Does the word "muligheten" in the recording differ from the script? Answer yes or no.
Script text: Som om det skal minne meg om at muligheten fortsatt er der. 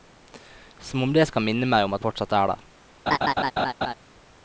yes